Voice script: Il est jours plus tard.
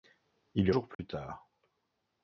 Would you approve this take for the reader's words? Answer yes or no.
yes